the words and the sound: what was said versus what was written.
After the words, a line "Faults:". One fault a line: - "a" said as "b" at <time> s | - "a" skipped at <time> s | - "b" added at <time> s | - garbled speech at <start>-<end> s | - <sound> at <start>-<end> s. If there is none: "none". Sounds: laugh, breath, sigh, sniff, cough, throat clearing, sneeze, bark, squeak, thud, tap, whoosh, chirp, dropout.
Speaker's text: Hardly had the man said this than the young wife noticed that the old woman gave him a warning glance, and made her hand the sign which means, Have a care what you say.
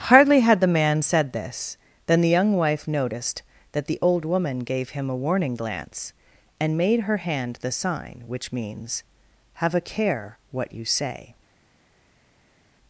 Hardly had the man said this than the young wife noticed that the old woman gave him a warning glance, and made her hand the sign which means, Have a care what you say.
Faults:
none